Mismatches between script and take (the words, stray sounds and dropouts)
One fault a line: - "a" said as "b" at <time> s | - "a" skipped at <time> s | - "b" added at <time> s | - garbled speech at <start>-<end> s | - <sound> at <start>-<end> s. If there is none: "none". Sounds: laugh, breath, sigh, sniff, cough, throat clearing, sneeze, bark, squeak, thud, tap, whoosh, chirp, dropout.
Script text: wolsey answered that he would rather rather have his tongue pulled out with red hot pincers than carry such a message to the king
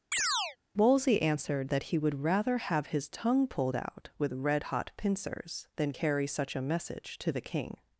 - chirp at 0.1-0.6 s
- "rather" skipped at 2.6 s